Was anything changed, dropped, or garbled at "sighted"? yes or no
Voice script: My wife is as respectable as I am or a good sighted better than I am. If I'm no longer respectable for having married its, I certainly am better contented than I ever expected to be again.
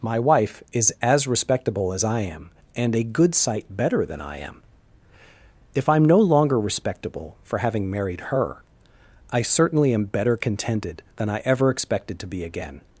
yes